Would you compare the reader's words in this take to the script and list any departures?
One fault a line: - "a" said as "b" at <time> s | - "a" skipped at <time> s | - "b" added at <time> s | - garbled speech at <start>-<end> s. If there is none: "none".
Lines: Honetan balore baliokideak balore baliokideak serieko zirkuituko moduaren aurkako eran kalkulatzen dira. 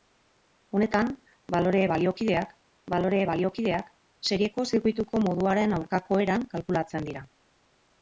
none